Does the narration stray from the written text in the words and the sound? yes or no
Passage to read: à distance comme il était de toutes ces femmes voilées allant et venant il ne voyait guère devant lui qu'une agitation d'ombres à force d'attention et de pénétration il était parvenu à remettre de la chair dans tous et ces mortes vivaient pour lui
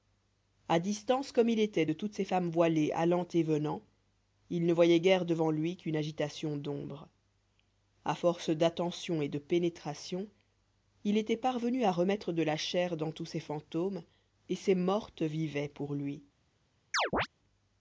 yes